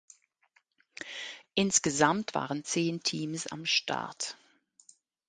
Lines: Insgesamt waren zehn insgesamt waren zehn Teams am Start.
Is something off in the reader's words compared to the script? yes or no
yes